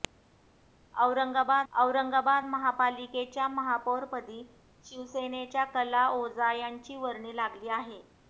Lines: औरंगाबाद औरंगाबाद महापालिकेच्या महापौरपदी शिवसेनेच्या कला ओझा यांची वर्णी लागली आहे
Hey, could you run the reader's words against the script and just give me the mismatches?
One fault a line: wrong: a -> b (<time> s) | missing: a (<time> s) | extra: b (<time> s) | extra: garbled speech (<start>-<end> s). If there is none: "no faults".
no faults